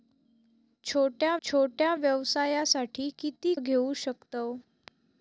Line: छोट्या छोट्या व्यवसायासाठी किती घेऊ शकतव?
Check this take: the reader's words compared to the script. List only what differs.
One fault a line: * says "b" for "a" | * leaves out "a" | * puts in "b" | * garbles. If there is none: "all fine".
all fine